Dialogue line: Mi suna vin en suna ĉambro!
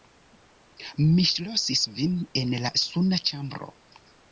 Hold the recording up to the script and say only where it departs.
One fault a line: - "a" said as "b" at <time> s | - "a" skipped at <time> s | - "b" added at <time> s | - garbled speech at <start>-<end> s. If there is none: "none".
- "suna" said as "ŝlosis" at 1.3 s
- "la" added at 2.6 s